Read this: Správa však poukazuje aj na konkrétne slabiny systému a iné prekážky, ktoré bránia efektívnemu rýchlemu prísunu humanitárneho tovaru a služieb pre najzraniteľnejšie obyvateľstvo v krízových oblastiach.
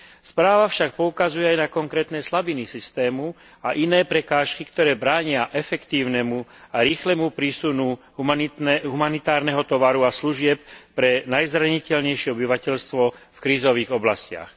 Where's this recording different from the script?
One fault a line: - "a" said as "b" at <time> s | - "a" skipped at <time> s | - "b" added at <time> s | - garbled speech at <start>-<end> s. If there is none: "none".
- "a" added at 6.7 s